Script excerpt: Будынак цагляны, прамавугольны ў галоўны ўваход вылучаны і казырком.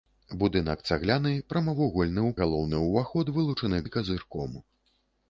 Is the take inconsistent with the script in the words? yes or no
no